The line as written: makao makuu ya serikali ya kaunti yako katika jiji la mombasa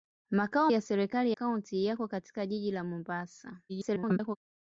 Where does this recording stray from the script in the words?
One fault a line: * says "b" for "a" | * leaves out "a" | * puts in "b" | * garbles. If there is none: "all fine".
* leaves out "makuu"
* leaves out "ya"
* garbles